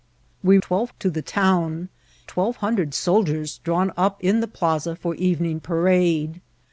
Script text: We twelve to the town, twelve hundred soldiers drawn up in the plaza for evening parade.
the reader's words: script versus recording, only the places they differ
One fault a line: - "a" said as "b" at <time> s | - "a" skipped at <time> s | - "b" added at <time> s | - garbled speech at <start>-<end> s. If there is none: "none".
none